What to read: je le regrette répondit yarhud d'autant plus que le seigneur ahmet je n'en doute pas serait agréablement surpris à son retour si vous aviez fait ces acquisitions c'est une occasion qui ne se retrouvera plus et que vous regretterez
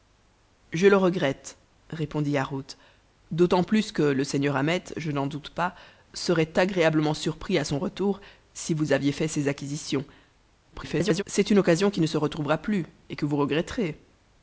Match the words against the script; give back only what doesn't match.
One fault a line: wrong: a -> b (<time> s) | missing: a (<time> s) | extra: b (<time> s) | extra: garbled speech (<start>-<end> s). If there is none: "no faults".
extra: garbled speech (10.7-11.2 s)